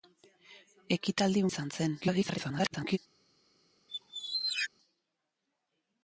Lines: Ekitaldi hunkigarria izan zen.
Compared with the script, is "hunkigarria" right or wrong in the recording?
wrong